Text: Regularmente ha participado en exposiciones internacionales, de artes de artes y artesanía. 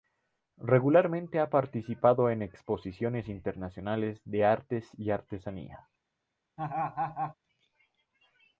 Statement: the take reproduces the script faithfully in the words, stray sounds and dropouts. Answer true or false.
false